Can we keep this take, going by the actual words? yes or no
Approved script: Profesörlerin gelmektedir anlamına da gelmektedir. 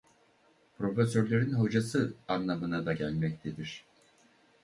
no